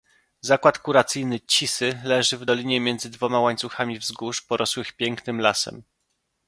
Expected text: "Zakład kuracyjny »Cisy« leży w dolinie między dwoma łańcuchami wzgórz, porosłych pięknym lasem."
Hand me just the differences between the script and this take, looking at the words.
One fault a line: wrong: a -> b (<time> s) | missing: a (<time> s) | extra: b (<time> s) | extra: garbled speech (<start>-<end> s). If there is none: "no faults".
no faults